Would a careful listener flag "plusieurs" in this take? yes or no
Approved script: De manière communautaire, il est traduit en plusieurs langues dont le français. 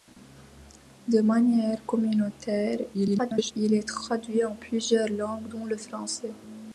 no